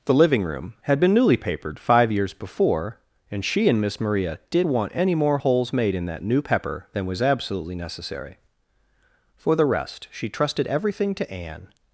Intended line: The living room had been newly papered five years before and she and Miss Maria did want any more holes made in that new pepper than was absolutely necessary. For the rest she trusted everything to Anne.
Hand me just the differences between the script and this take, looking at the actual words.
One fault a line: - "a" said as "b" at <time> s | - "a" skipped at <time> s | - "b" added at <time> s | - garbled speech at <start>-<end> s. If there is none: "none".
none